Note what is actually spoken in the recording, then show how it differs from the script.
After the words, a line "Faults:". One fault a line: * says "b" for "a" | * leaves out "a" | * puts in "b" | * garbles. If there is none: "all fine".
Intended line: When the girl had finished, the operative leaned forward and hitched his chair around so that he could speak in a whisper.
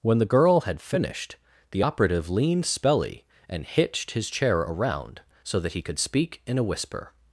When the girl had finished, the operative leaned spelly and hitched his chair around so that he could speak in a whisper.
Faults:
* says "spelly" for "forward"